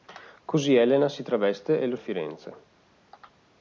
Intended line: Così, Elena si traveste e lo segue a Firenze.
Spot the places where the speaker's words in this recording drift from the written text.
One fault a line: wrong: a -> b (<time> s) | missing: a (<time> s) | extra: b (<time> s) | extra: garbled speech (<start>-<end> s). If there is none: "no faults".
missing: segue (1.9 s)